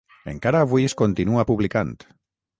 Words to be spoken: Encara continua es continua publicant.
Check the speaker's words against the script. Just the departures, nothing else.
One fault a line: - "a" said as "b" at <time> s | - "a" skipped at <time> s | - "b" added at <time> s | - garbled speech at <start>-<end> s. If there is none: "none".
- "continua" said as "avui" at 0.7 s